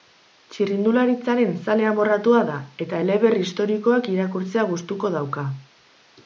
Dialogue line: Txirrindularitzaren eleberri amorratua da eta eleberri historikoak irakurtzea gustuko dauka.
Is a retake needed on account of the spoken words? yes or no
yes